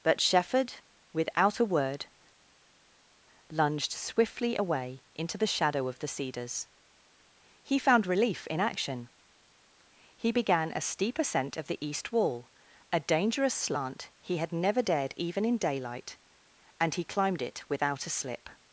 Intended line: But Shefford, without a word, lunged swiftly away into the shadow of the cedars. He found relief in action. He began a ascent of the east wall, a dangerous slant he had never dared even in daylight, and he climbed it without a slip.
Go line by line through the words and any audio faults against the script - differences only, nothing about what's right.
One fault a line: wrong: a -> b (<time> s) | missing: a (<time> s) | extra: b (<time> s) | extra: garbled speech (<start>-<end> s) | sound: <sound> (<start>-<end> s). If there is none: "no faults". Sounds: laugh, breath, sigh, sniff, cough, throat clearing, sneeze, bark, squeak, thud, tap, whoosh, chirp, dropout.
extra: steep (10.8 s)